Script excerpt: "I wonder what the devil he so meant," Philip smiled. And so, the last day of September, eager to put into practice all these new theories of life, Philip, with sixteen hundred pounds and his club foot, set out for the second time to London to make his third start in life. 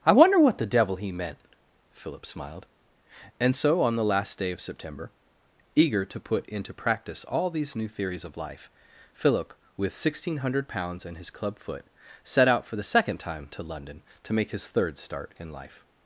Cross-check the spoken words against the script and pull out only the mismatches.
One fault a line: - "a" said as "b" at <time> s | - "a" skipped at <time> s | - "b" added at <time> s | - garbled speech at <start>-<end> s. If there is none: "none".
- "so" skipped at 1.1 s
- "on" added at 3.8 s